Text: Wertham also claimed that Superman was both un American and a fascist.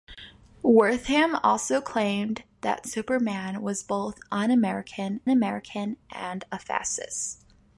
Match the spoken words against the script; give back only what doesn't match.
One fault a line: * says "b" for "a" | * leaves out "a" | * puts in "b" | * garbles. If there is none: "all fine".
* puts in "American"